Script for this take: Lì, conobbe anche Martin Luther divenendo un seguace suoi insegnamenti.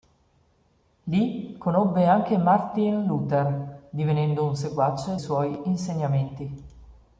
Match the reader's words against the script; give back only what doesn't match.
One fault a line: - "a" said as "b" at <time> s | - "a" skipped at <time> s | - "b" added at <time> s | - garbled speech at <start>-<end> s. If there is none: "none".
none